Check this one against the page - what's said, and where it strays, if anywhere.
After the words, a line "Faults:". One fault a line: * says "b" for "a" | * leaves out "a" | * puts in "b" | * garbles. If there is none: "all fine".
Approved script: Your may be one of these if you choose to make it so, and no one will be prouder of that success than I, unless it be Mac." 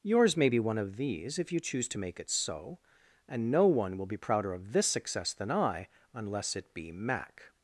Yours may be one of these if you choose to make it so, and no one will be prouder of this success than I, unless it be Mac."
Faults:
* says "Yours" for "Your"
* says "this" for "that"